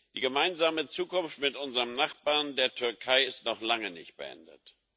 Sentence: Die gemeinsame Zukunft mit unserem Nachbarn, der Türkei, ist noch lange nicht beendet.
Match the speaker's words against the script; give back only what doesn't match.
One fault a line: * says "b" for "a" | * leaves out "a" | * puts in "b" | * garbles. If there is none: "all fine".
all fine